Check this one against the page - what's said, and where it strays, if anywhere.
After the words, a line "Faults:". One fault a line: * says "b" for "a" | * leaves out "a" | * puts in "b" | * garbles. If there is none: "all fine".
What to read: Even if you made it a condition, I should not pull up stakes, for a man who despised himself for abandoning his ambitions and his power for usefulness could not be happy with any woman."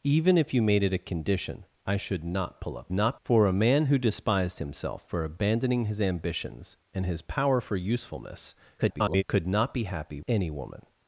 Even if you made it a condition, I should not pull up not, for a man who despised himself for abandoning his ambitions and his power for usefulness [garbled] could not be happy any woman."
Faults:
* says "not" for "stakes"
* garbles
* leaves out "with"